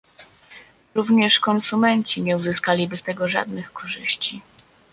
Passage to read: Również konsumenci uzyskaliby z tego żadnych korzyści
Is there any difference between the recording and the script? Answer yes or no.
yes